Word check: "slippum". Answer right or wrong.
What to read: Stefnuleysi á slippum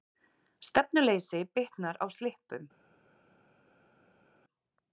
right